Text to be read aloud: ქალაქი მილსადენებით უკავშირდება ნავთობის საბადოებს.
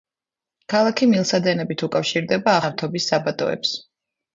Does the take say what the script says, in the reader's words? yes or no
yes